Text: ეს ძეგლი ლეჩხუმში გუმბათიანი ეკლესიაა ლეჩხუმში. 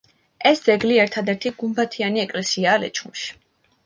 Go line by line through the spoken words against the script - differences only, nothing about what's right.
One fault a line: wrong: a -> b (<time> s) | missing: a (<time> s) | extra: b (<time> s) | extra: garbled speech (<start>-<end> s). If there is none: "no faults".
wrong: ლეჩხუმში -> ერთადერთი (1.1 s)